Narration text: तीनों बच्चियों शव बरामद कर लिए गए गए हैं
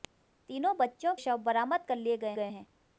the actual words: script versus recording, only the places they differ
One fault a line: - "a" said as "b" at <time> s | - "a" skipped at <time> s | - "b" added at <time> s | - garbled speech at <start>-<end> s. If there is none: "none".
none